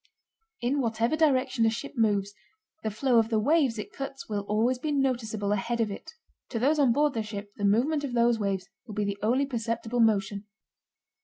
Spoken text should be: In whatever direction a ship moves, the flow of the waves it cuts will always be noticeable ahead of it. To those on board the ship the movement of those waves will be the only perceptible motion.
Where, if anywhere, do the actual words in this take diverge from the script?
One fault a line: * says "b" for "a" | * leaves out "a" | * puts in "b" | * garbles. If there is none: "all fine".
all fine